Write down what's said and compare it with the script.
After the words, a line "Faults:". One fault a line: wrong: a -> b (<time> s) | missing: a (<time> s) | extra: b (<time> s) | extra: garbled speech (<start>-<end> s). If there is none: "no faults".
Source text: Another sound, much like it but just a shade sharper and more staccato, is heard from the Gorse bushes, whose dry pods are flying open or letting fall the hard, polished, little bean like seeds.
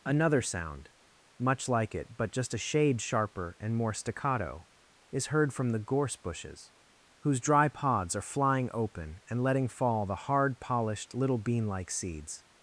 Another sound, much like it but just a shade sharper and more staccato, is heard from the Gorse bushes, whose dry pods are flying open and letting fall the hard, polished, little bean like seeds.
Faults:
wrong: or -> and (9.3 s)